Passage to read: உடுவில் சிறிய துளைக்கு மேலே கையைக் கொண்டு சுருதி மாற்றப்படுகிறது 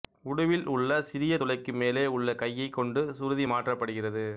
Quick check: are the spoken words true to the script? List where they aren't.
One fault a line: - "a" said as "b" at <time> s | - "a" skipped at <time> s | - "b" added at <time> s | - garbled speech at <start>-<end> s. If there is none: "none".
- "உள்ள" added at 0.7 s
- "உள்ள" added at 2.2 s